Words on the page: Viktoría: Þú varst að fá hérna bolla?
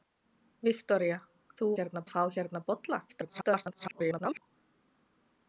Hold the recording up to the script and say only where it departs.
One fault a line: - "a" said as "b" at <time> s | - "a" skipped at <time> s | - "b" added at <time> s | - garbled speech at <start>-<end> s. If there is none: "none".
- "varst" said as "hérna" at 1.8 s
- garbled speech at 3.1-4.4 s